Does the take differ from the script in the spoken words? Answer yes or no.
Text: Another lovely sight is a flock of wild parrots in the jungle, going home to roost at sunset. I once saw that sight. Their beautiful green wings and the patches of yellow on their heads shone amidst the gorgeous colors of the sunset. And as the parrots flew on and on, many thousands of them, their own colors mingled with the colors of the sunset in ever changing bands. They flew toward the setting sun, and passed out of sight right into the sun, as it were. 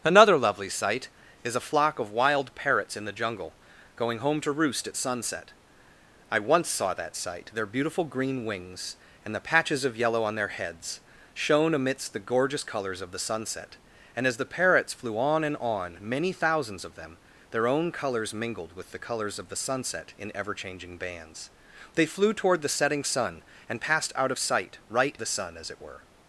yes